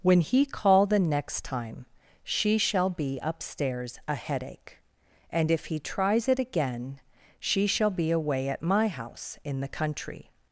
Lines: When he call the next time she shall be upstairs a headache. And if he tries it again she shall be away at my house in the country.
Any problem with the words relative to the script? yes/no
no